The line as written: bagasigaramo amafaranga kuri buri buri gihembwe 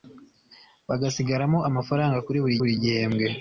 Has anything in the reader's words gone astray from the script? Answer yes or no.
no